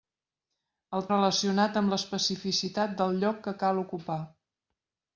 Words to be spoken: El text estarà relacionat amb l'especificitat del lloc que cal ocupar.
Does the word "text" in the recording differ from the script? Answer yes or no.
yes